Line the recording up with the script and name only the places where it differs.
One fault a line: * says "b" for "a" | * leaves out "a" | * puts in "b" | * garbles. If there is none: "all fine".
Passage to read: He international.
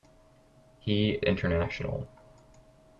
all fine